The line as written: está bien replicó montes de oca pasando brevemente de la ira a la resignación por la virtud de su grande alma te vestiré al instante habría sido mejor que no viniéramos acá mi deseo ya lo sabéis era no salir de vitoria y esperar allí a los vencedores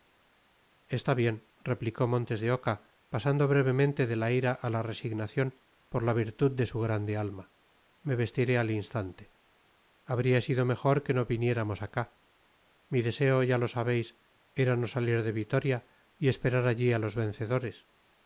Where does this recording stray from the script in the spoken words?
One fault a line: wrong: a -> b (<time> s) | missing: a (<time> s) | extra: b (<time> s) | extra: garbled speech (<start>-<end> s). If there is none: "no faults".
wrong: te -> me (8.0 s)